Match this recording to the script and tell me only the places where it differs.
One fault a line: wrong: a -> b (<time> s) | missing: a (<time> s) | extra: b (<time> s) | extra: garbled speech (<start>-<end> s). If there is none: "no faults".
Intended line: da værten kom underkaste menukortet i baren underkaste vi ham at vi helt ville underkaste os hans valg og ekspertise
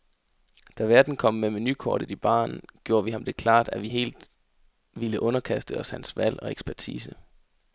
wrong: underkaste -> med (1.3 s)
wrong: underkaste -> gjorde (2.8 s)
extra: det klart (3.2 s)